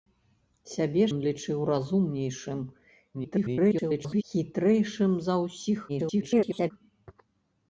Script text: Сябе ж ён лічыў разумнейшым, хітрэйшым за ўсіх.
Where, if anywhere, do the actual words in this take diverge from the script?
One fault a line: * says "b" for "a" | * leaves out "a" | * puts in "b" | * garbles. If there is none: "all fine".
* leaves out "ж"
* garbles
* garbles